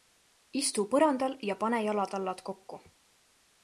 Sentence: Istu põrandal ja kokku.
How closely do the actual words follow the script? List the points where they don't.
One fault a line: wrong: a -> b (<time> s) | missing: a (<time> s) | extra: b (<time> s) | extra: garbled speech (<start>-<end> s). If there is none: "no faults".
extra: pane jalatallad (1.6 s)